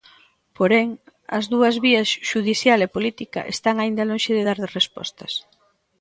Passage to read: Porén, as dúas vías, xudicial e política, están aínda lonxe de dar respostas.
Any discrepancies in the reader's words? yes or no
no